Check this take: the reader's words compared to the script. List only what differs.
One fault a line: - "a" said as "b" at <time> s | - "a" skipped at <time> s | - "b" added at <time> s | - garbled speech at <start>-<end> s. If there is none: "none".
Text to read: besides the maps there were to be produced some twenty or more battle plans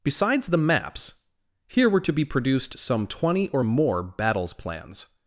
- "there" said as "here" at 1.7 s
- "battle" said as "battles" at 4.0 s